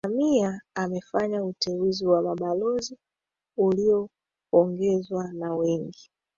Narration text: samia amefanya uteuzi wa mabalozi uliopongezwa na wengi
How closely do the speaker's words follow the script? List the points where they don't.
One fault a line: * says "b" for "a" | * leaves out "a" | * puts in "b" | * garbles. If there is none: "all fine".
all fine